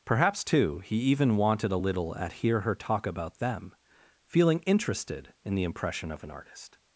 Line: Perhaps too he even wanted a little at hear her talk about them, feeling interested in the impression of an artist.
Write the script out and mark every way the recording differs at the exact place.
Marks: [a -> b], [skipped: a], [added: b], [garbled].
Perhaps too he even wanted a little at hear her talk about them, feeling interested in the impression of an artist.